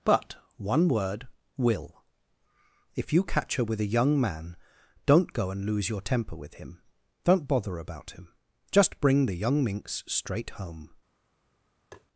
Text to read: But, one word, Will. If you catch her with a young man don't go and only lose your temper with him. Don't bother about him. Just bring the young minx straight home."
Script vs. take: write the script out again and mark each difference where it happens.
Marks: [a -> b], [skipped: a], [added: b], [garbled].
But, one word, Will. If you catch her with a young man don't go and [skipped: only] lose your temper with him. Don't bother about him. Just bring the young minx straight home."